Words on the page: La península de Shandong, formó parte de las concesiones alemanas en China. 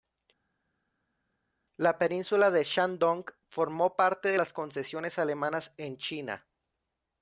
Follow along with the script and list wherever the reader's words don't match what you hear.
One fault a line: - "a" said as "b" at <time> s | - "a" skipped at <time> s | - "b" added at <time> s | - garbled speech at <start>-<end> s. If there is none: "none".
none